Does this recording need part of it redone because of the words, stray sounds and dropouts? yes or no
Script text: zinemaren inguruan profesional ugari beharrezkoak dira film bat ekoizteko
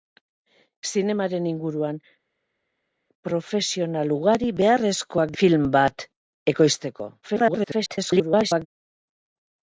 yes